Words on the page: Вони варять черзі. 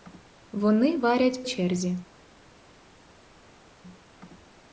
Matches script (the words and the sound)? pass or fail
pass